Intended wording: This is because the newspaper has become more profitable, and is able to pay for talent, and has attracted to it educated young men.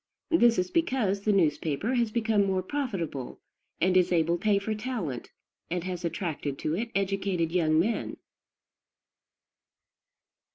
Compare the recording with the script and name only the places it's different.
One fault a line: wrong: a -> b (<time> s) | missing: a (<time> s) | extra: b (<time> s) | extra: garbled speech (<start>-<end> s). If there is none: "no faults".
missing: to (4.4 s)